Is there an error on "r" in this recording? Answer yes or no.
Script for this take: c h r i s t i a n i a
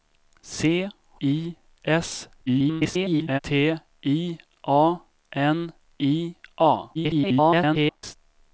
yes